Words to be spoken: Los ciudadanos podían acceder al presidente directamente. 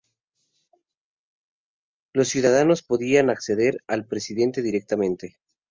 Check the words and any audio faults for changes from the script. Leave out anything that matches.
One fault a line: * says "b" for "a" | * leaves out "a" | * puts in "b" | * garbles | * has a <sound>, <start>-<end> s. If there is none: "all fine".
all fine